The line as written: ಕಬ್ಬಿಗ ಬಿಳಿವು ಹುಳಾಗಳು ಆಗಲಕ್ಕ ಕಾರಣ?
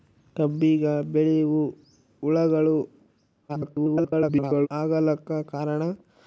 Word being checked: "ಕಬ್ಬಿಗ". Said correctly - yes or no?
yes